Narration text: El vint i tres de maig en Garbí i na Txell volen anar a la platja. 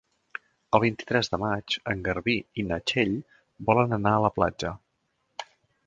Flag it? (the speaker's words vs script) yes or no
no